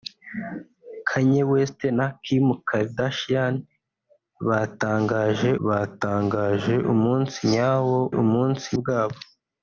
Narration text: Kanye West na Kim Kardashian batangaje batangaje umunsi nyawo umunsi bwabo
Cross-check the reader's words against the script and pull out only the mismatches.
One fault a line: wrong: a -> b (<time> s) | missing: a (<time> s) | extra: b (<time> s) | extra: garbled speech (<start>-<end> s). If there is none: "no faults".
no faults